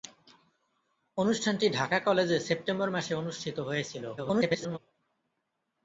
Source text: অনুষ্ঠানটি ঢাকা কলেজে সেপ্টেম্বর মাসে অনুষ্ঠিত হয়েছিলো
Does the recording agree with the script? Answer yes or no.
no